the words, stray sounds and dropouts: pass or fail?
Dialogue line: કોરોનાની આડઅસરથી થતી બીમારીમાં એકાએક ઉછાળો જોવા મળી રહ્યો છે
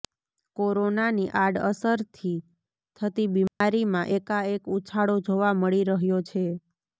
fail